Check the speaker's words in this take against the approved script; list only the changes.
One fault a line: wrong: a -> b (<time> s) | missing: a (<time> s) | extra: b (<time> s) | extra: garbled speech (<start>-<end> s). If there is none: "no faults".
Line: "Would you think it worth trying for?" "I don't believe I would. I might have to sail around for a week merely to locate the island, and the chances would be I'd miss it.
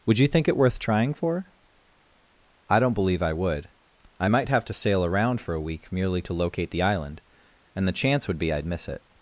wrong: chances -> chance (7.9 s)